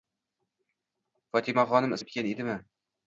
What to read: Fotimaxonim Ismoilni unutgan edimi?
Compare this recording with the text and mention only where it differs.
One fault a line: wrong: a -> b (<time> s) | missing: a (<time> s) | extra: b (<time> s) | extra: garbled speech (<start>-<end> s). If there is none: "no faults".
missing: Ismoilni (1.9 s)